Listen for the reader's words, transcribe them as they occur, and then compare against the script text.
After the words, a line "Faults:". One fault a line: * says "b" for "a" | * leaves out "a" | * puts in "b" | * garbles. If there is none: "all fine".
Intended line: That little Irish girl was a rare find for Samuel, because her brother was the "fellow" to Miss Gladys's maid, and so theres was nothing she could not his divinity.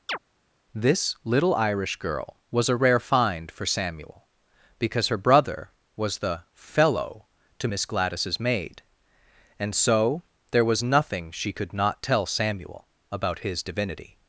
This little Irish girl was a rare find for Samuel, because her brother was the "fellow" to Miss Gladys's maid, and so there was nothing she could not tell Samuel about his divinity.
Faults:
* says "This" for "That"
* says "there" for "theres"
* puts in "tell Samuel about"